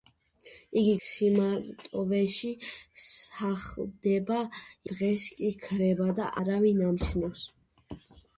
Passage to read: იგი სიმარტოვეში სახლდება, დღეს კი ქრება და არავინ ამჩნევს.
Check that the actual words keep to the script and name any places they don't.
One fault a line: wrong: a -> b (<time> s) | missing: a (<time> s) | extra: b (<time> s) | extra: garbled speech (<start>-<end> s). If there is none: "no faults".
no faults